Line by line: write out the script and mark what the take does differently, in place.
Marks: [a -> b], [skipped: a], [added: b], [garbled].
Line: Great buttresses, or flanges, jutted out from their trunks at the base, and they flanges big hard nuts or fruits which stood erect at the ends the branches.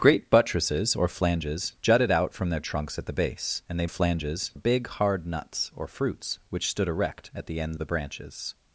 Great buttresses, or flanges, jutted out from their trunks at the base, and they flanges big hard nuts or fruits which stood erect at the ends the branches.